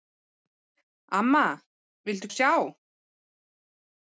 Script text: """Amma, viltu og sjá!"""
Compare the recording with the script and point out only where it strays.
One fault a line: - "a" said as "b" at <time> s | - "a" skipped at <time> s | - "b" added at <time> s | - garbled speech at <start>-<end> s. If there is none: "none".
none